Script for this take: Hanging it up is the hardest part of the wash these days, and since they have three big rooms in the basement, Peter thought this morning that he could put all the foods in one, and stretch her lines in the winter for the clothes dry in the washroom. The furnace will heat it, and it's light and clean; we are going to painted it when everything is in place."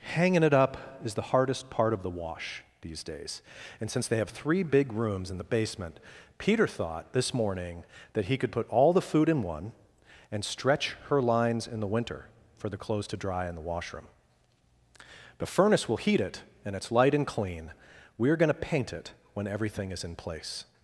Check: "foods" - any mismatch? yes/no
yes